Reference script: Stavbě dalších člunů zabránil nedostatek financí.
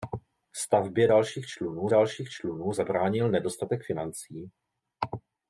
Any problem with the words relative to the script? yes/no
yes